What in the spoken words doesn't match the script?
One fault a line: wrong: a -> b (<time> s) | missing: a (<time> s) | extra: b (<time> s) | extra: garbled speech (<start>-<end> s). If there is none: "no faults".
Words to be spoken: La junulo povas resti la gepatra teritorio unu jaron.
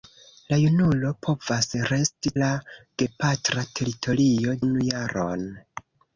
no faults